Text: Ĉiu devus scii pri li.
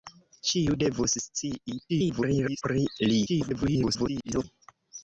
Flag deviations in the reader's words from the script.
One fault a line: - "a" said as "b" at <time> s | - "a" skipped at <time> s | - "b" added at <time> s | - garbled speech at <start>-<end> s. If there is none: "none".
- garbled speech at 1.9-2.6 s
- garbled speech at 3.3-4.4 s